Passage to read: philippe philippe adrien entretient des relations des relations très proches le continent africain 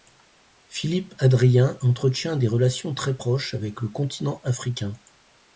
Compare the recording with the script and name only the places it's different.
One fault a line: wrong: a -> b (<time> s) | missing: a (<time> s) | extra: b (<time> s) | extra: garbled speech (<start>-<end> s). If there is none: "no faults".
missing: philippe (1.1 s)
missing: des relations (2.9 s)
extra: avec (3.5 s)